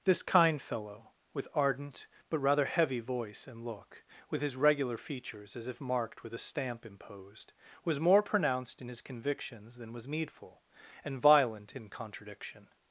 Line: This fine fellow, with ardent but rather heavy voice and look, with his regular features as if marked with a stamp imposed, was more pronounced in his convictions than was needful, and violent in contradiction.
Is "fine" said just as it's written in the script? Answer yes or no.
no